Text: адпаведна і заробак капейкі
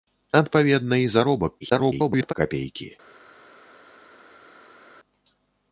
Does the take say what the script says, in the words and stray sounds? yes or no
no